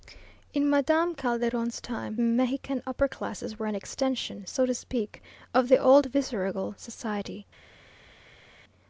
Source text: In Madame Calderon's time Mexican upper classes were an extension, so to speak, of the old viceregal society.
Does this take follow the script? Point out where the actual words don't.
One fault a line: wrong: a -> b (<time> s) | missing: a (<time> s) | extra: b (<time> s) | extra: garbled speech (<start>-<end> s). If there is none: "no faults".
no faults